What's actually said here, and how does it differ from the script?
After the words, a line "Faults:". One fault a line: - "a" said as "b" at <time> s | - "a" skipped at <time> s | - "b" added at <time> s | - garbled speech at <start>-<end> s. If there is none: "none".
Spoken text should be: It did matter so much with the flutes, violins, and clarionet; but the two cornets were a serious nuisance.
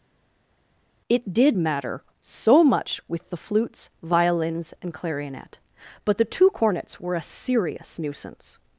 It did matter so much with the flutes, violins, and clarionet; but the two cornets were a serious nuisance.
Faults:
none